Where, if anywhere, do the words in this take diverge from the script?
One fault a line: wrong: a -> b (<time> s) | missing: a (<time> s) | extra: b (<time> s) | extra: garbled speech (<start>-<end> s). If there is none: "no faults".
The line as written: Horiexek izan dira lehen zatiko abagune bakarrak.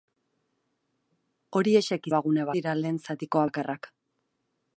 wrong: izan -> abagune (2.1 s)
missing: abagune (3.4 s)